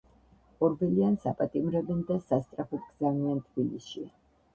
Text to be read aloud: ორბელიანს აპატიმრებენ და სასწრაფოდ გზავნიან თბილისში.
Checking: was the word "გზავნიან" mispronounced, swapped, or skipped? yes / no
no